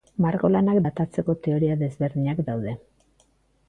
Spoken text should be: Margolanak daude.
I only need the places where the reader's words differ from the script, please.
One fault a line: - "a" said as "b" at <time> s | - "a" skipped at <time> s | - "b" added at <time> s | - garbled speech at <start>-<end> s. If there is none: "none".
- "datatzeko teoria desberdinak" added at 0.8 s